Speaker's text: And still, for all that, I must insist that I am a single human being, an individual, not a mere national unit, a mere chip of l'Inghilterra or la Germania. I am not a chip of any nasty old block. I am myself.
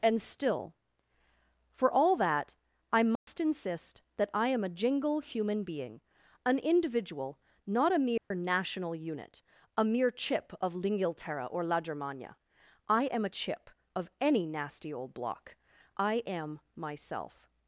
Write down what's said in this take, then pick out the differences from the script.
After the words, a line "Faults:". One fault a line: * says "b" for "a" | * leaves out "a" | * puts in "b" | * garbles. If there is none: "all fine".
And still, for all that, I must insist that I am a jingle human being, an individual, not a mere national unit, a mere chip of l'Inghilterra or la Germania. I am a chip of any nasty old block. I am myself.
Faults:
* says "jingle" for "single"
* leaves out "not"